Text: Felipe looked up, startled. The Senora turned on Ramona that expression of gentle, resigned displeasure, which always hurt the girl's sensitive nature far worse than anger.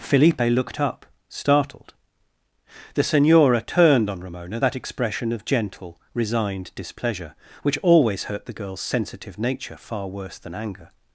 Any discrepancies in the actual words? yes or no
no